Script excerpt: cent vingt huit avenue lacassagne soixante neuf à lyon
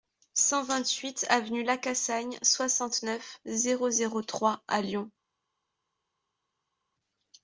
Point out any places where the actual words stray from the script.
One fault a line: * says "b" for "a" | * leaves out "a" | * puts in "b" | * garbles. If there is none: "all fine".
* puts in "zéro zéro trois"